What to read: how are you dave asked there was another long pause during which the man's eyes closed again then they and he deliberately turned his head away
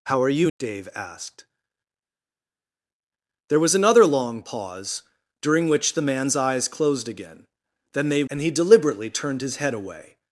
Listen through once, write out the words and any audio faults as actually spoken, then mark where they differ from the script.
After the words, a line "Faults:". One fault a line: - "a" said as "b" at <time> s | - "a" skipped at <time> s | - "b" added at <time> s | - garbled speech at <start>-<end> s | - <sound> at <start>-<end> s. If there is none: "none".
how are you dave asked there was another long pause during which the man's eyes closed again then they and he deliberately turned his head away
Faults:
none